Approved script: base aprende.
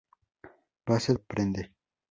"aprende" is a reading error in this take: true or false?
false